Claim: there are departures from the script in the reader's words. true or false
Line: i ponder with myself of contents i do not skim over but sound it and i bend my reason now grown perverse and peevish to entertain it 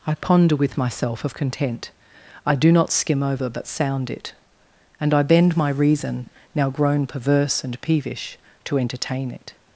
true